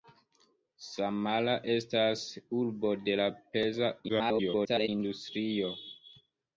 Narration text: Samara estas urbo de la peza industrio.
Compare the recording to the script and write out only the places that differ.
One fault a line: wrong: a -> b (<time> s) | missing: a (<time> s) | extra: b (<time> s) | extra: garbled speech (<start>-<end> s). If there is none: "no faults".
extra: garbled speech (4.1-4.9 s)